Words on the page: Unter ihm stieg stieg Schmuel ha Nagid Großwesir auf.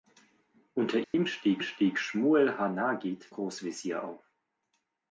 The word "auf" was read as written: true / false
true